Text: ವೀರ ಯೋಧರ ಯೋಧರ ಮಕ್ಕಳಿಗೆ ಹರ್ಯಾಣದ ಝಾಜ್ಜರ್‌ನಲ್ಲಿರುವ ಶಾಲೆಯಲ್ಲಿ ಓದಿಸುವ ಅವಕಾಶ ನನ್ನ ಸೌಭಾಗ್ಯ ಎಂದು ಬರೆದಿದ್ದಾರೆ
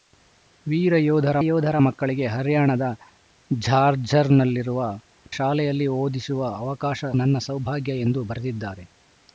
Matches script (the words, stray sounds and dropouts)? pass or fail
pass